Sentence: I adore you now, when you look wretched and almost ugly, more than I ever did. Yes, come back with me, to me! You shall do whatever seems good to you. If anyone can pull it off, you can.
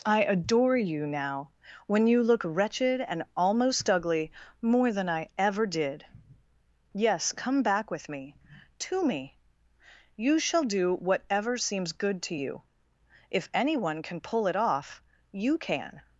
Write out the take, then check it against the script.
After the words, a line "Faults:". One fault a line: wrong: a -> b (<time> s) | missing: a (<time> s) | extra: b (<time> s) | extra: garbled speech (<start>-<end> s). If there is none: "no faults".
I adore you now, when you look wretched and almost ugly, more than I ever did. Yes, come back with me, to me! You shall do whatever seems good to you. If anyone can pull it off, you can.
Faults:
no faults